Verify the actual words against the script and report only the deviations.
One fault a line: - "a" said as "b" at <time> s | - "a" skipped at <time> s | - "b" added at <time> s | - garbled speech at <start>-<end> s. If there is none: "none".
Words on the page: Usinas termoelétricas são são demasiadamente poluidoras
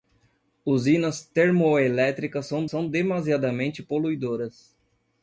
none